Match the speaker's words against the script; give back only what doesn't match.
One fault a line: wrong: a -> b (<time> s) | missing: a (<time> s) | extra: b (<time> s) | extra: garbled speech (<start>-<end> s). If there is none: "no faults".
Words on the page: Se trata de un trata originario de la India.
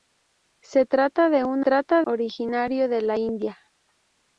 no faults